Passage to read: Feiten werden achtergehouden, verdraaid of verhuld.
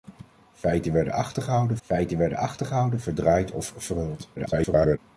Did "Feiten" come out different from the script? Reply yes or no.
no